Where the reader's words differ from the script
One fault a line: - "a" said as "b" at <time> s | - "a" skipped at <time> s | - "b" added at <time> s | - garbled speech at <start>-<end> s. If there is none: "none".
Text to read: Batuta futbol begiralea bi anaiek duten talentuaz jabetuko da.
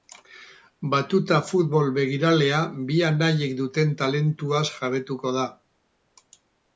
none